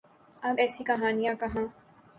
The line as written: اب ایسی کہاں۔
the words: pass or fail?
fail